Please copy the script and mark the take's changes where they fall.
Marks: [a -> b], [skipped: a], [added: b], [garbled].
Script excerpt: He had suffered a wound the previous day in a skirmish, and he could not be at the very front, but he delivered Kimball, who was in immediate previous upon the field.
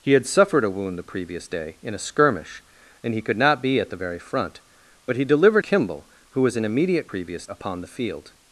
He had suffered a wound the previous day in a skirmish, and he could not be at the very front, but he delivered Kimball, who was in immediate previous upon the field.